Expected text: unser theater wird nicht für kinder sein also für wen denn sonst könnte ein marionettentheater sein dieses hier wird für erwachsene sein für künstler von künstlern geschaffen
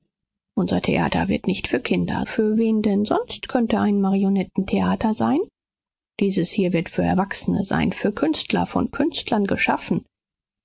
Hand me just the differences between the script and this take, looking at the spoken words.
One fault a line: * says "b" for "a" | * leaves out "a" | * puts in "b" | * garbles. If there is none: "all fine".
* leaves out "sein also"